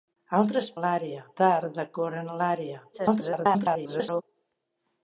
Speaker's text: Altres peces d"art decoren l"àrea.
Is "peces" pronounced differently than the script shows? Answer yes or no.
yes